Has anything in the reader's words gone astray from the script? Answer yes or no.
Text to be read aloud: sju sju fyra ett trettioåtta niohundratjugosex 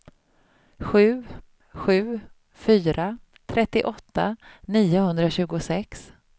yes